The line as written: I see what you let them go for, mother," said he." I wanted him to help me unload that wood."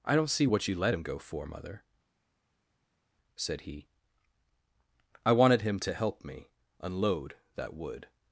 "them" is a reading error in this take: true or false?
true